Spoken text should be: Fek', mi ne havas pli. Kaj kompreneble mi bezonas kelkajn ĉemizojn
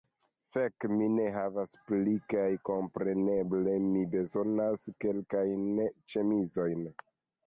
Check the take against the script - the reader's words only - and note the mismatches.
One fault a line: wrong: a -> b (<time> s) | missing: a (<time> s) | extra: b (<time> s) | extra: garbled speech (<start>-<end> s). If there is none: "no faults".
no faults